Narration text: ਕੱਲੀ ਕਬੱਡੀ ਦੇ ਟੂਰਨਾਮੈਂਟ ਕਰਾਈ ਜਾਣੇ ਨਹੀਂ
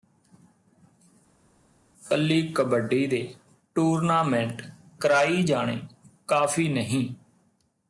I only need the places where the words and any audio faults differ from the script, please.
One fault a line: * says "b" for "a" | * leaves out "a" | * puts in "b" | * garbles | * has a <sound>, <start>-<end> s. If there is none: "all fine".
* puts in "ਕਾਫੀ"